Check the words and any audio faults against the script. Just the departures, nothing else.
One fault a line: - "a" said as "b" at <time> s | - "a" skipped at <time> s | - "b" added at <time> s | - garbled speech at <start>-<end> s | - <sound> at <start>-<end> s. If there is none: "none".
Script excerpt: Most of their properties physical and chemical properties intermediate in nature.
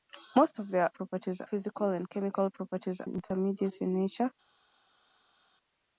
none